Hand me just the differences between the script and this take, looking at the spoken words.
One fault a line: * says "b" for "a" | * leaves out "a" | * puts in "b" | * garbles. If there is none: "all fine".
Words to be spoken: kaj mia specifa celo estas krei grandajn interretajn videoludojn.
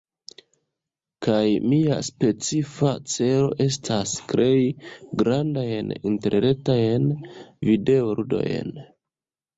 all fine